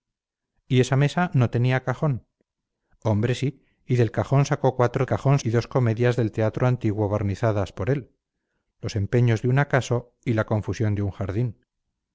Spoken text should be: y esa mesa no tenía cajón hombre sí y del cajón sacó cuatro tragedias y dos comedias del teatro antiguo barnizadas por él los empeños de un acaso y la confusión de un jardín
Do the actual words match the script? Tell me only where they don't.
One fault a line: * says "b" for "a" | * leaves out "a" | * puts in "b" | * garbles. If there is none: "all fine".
* says "cajón" for "tragedias"